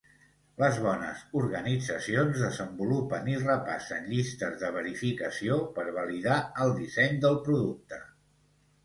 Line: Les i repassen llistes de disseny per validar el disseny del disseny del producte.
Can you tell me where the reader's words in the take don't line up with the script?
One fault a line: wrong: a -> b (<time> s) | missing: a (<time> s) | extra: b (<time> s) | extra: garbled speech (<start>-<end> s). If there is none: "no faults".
extra: bones organitzacions desenvolupen (0.8 s)
wrong: disseny -> verificació (4.8 s)
missing: disseny del (7.4 s)